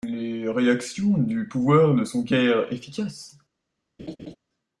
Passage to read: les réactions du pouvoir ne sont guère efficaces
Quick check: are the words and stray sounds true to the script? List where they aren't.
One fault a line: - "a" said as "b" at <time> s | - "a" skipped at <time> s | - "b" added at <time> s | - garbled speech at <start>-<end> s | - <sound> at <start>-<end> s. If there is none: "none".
- laugh at 4.0-4.4 s